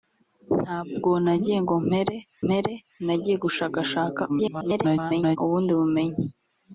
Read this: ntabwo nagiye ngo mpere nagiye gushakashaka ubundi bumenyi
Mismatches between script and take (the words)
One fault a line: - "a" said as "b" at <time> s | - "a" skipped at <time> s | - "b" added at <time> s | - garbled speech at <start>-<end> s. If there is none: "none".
- "mpere" added at 2.4 s
- garbled speech at 4.3-5.4 s